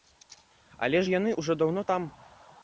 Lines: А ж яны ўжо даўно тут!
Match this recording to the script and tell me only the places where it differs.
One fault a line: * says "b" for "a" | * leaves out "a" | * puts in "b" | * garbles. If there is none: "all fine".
* says "Але" for "А"
* says "там" for "тут"